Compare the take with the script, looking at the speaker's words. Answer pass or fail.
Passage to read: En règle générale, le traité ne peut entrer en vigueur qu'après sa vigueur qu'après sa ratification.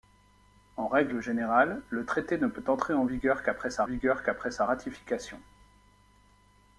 pass